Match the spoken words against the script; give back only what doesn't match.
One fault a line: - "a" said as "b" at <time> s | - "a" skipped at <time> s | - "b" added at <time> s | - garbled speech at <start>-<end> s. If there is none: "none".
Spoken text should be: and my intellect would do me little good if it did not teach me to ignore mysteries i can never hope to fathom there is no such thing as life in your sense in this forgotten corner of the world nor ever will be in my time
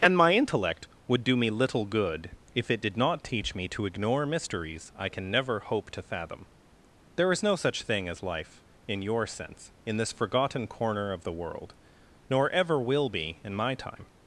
none